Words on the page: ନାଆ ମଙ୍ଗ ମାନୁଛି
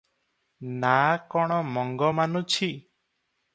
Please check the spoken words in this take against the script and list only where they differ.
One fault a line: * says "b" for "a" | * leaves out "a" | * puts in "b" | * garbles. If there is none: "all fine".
* puts in "କଣ"